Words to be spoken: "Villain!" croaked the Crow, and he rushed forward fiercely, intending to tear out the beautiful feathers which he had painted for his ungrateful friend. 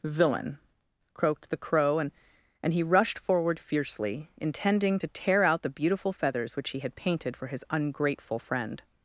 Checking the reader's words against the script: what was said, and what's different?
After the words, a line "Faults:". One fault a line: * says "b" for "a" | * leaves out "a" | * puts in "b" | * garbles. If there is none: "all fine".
"Villain!" croaked the Crow, and and he rushed forward fiercely, intending to tear out the beautiful feathers which he had painted for his ungrateful friend.
Faults:
* puts in "and"